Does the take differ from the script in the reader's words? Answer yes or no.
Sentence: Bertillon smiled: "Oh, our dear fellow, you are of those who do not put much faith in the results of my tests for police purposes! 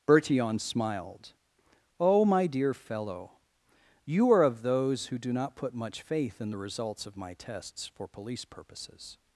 yes